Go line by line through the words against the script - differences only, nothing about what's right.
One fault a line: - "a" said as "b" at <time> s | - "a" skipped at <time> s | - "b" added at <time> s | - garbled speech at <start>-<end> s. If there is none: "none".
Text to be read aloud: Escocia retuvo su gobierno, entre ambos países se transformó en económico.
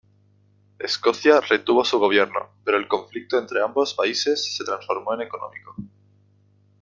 - "pero el conflicto" added at 2.6 s